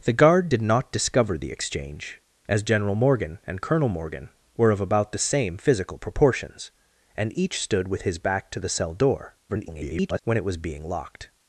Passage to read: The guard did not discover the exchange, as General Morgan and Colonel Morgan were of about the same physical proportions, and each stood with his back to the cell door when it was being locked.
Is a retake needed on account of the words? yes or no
yes